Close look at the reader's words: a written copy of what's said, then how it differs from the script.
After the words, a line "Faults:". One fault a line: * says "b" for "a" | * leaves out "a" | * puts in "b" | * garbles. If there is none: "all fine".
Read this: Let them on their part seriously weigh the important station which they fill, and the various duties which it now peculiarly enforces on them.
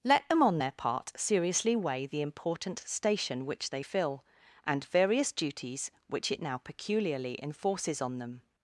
Let them on their part seriously weigh the important station which they fill, and various duties which it now peculiarly enforces on them.
Faults:
* leaves out "the"